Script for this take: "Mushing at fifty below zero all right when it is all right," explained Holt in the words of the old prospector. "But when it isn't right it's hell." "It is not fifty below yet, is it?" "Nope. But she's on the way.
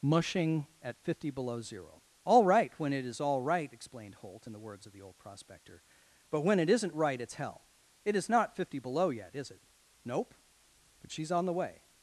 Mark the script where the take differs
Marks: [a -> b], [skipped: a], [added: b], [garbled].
"Mushing at fifty below zero all right when it is all right," explained Holt in the words of the old prospector. "But when it isn't right it's hell." "It is not fifty below yet, is it?" "Nope. But she's on the way.